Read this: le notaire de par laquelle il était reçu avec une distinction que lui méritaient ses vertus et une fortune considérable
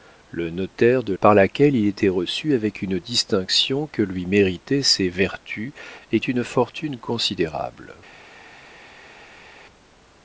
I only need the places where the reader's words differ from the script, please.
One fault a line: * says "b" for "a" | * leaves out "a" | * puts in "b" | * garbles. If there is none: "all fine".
all fine